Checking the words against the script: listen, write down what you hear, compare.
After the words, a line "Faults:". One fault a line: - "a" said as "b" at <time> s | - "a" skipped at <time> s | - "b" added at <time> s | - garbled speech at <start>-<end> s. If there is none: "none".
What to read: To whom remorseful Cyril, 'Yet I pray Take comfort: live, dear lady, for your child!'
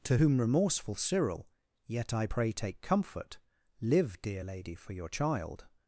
To whom remorseful Cyril, 'Yet I pray Take comfort: live, dear lady, for your child!'
Faults:
none